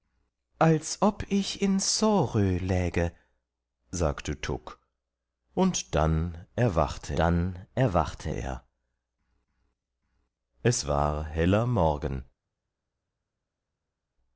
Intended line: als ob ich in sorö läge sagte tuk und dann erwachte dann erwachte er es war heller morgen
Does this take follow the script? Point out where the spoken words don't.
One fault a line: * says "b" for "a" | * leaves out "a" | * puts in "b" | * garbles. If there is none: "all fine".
all fine